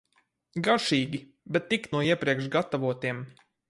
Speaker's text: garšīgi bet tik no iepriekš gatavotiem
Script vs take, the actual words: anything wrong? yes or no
no